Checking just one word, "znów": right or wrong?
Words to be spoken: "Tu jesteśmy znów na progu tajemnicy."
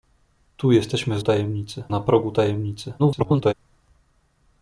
wrong